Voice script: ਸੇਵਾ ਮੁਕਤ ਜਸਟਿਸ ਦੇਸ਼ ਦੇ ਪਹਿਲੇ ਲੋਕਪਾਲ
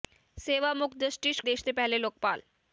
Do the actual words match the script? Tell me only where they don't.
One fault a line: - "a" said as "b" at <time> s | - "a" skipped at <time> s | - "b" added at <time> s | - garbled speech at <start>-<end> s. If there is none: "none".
none